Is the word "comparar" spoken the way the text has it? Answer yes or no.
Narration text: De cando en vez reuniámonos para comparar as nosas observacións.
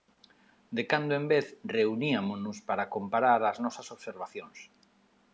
yes